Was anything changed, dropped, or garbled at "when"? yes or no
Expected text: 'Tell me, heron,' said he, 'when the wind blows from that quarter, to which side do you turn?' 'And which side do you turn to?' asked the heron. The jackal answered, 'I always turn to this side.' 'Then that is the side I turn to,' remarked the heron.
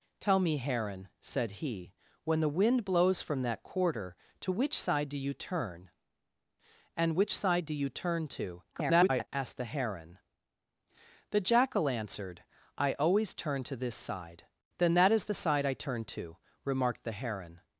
no